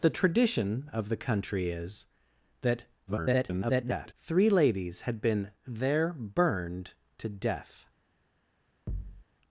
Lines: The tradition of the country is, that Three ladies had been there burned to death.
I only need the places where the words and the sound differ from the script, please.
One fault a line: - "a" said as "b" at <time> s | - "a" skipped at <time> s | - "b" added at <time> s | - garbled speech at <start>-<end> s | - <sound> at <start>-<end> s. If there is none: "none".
- garbled speech at 3.1-4.1 s
- thud at 8.9-9.2 s